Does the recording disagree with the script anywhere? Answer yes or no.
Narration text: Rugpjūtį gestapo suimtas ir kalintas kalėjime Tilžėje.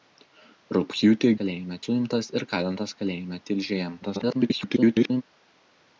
yes